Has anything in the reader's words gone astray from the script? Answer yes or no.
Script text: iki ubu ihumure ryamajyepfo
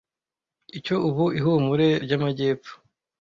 yes